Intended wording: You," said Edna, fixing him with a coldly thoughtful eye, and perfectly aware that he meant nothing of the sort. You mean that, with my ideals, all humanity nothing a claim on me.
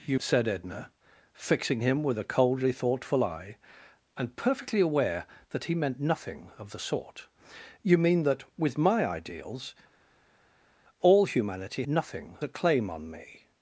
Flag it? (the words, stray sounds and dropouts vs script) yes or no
no